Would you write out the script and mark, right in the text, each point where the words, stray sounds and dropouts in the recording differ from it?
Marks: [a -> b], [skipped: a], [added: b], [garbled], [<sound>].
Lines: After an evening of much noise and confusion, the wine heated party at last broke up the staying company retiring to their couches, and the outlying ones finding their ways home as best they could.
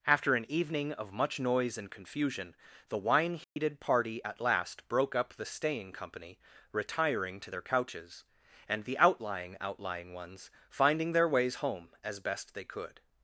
After an evening of much noise and confusion, the wine heated [dropout] party at last broke up the staying company retiring to their couches, and the outlying [added: outlying] ones finding their ways home as best they could.